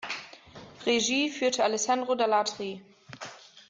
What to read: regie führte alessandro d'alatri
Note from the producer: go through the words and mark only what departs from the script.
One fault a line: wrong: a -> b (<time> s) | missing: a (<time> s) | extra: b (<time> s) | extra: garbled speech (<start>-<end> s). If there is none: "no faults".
no faults